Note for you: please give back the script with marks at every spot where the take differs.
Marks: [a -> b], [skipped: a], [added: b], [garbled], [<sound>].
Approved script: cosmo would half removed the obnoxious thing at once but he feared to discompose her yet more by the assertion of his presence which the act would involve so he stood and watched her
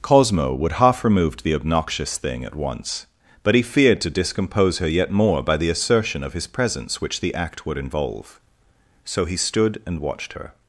cosmo would half removed the obnoxious thing at once but he feared to discompose her yet more by the assertion of his presence which the act would involve so he stood and watched her